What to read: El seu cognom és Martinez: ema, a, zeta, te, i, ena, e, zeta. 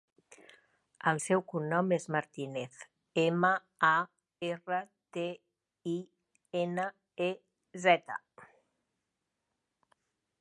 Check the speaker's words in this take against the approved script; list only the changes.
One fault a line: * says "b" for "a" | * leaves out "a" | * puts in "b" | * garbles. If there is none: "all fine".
* says "erra" for "zeta"